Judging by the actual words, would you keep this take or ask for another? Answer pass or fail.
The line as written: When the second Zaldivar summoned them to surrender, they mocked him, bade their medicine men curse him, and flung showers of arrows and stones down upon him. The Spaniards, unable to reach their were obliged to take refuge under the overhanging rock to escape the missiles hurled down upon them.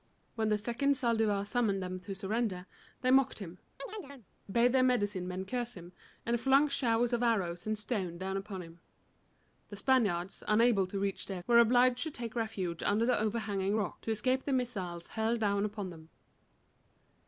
pass